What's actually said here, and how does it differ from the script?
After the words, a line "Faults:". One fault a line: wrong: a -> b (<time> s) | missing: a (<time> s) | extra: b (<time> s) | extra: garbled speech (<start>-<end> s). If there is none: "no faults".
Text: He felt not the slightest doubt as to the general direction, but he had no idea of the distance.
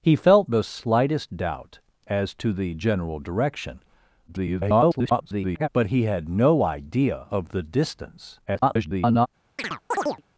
He felt the slightest doubt as to the general direction, [garbled] but he had no idea of the distance. [garbled]
Faults:
missing: not (0.5 s)
extra: garbled speech (4.3-5.7 s)
extra: garbled speech (8.5-9.3 s)